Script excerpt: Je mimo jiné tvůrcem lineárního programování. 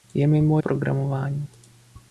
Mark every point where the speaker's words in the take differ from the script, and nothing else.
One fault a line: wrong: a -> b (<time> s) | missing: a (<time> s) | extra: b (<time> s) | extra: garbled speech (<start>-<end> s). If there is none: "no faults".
missing: jiné tvůrcem lineárního (0.6 s)